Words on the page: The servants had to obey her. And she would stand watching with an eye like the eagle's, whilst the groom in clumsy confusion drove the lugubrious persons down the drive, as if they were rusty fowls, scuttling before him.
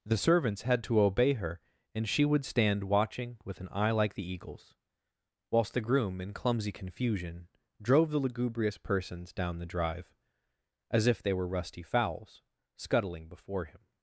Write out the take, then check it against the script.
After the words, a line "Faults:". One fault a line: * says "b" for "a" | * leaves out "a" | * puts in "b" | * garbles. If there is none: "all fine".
The servants had to obey her. And she would stand watching with an eye like the eagle's, whilst the groom in clumsy confusion drove the lugubrious persons down the drive, as if they were rusty fowls, scuttling before him.
Faults:
all fine